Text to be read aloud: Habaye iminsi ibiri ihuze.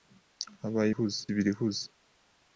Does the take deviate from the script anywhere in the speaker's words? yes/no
yes